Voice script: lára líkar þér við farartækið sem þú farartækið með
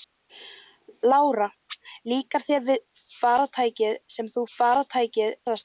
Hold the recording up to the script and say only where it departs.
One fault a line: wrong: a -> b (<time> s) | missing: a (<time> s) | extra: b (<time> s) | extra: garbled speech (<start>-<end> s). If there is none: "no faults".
no faults